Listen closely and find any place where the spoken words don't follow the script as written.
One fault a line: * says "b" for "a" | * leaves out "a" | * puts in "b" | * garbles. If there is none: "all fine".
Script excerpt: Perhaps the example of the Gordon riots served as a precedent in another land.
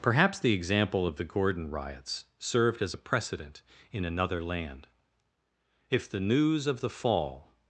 * puts in "If the news of the fall"